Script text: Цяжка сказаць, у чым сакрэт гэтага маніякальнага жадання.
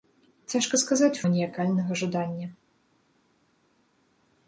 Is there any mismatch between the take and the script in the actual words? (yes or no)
yes